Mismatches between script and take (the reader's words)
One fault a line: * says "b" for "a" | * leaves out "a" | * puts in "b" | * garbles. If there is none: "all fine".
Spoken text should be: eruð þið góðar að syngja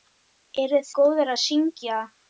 * leaves out "þið"